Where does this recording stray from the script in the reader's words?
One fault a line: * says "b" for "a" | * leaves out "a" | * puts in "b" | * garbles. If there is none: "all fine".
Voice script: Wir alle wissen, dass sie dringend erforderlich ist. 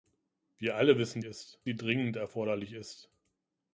* says "ist" for "dass"